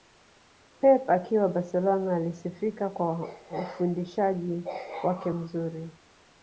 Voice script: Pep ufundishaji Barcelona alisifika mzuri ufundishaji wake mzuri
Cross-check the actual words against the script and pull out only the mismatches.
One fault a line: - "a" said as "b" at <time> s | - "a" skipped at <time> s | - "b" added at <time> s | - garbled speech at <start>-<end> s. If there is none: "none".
- "ufundishaji" said as "akiwa" at 1.1 s
- "mzuri" said as "kwa" at 2.9 s